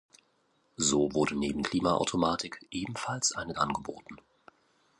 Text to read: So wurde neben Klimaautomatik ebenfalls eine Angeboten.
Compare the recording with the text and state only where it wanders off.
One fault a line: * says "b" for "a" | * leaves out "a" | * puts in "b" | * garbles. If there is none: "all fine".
all fine